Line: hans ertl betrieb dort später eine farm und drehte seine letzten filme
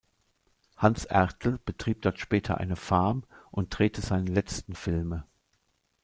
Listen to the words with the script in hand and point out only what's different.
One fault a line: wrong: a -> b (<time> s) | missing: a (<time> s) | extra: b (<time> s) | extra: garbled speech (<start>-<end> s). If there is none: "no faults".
no faults